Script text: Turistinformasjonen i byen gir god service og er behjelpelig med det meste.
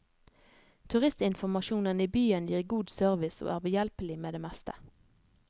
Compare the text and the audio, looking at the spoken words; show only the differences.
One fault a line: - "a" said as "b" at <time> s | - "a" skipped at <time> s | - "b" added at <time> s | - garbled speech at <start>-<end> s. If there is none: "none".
none